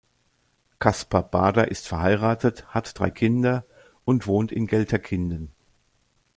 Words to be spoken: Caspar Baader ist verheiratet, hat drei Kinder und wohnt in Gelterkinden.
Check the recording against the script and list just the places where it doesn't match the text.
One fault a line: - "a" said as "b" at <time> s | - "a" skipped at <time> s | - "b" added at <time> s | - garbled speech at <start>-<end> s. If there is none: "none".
none